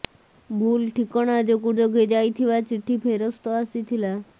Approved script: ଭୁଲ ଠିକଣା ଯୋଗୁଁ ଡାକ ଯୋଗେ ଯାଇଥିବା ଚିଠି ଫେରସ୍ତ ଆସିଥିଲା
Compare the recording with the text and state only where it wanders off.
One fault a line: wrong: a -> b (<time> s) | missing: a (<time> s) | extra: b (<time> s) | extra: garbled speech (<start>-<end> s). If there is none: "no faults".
missing: ଡାକ (1.7 s)